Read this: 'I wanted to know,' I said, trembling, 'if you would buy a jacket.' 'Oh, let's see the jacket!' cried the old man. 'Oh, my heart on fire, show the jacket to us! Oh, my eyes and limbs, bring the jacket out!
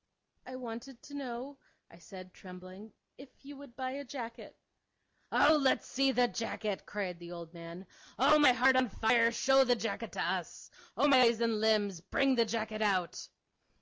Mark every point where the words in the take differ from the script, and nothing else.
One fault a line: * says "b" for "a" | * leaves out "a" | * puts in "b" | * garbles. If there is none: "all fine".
all fine